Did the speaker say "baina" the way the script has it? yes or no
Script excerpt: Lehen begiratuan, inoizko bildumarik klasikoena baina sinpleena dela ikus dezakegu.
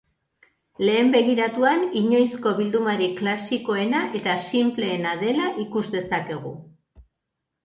no